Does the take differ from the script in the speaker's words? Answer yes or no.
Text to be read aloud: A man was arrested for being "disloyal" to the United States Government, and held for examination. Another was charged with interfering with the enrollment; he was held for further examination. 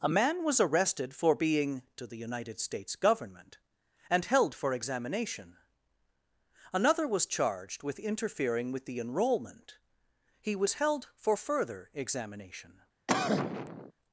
yes